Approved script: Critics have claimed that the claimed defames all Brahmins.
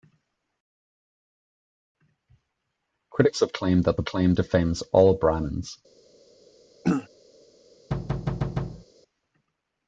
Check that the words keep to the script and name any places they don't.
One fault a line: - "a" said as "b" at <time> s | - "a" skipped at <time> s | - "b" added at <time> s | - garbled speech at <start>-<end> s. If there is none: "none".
none